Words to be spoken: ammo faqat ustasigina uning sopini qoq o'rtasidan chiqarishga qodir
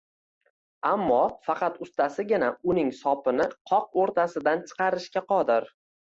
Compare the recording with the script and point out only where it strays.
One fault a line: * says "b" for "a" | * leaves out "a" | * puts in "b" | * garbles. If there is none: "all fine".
all fine